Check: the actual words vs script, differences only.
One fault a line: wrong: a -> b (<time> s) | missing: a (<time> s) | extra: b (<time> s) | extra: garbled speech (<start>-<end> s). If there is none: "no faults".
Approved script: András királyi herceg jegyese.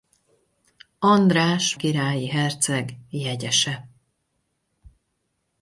no faults